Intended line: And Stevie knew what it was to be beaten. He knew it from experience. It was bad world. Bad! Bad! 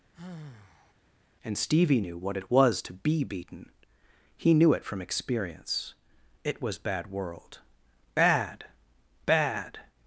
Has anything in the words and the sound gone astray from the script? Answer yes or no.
yes